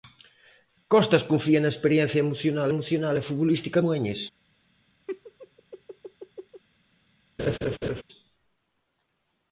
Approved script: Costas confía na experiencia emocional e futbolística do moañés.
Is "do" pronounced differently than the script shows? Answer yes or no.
yes